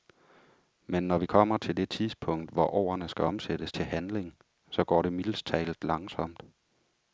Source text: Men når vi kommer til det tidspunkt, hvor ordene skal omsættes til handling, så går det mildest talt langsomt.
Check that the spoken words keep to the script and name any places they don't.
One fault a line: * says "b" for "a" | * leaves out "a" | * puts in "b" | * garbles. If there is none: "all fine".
all fine